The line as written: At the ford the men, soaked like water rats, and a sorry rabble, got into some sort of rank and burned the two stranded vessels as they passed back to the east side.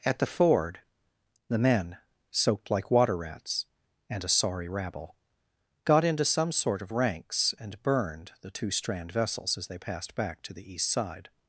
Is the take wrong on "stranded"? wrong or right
wrong